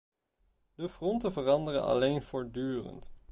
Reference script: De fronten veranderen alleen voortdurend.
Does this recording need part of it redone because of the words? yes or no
no